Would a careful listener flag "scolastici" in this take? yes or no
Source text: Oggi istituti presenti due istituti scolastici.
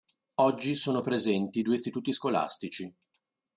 no